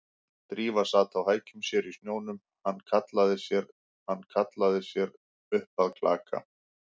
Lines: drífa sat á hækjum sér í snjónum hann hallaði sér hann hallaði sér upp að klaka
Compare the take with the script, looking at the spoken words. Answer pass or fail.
pass